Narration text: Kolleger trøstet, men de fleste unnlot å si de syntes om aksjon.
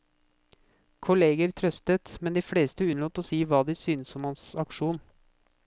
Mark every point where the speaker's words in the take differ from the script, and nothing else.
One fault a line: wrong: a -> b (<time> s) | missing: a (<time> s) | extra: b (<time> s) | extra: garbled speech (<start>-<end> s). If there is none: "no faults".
extra: hva (3.4 s)
extra: hans (4.3 s)